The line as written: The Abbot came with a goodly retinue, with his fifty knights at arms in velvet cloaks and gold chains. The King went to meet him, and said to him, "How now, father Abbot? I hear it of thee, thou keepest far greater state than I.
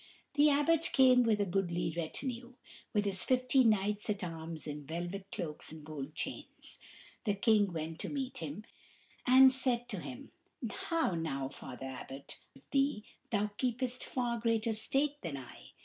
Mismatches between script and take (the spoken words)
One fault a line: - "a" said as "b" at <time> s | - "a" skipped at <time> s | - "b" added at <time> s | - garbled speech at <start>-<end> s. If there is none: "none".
- "I hear it" skipped at 12.4 s